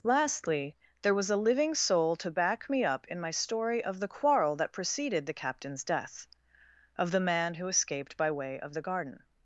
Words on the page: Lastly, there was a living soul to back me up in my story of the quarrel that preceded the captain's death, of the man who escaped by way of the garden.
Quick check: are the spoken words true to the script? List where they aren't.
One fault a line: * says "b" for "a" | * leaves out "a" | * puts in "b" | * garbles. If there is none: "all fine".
all fine